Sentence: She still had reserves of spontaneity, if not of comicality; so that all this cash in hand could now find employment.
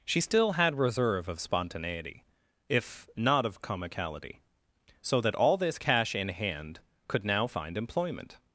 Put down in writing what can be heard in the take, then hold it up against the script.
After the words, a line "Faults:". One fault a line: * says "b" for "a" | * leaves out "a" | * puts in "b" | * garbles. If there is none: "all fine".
She still had reserve of spontaneity, if not of comicality; so that all this cash in hand could now find employment.
Faults:
* says "reserve" for "reserves"